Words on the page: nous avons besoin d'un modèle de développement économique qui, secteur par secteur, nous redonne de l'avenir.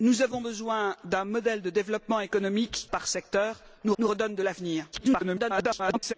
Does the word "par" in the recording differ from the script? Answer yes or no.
yes